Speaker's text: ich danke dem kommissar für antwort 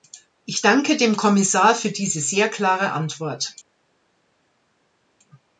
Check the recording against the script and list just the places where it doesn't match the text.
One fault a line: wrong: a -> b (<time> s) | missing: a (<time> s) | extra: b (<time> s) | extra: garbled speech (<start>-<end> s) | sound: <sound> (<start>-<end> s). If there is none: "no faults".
extra: diese sehr klare (1.9 s)